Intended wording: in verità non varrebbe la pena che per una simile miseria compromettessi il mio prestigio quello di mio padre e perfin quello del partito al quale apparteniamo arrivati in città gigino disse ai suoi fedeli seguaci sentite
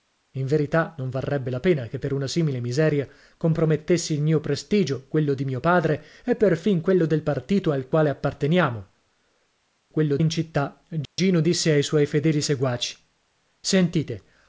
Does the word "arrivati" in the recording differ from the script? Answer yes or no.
yes